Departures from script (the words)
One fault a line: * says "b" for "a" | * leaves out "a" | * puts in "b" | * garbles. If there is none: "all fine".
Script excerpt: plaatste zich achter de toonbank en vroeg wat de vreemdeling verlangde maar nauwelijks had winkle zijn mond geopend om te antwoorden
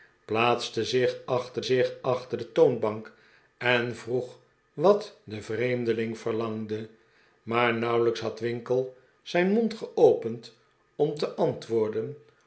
* puts in "zich achter"